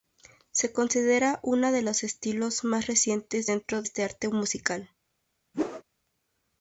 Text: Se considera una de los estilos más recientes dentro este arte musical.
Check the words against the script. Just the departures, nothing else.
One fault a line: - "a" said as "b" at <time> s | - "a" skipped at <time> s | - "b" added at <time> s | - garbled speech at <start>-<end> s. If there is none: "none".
none